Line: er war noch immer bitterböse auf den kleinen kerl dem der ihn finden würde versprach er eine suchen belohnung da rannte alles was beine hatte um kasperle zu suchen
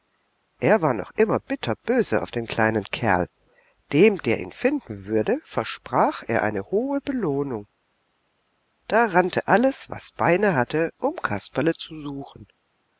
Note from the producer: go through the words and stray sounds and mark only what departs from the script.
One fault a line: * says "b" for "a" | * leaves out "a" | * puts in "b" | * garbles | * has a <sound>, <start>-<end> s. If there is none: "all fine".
* says "hohe" for "suchen"